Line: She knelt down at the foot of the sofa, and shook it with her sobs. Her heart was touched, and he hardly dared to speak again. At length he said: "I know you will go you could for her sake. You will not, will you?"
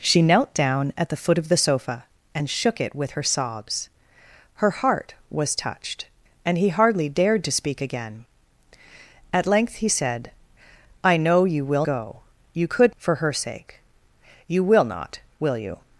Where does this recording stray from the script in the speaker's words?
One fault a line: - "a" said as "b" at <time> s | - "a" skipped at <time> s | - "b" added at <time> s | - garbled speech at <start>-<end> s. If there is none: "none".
none